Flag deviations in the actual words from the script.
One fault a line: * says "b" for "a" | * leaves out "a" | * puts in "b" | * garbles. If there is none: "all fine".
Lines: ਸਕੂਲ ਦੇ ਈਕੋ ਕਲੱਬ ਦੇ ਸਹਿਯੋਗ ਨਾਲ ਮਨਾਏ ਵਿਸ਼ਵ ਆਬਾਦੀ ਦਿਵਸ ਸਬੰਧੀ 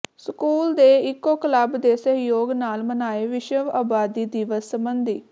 all fine